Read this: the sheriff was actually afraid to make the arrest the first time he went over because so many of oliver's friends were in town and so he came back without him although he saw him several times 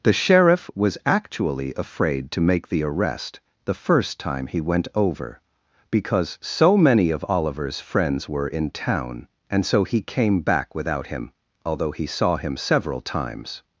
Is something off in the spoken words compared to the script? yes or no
no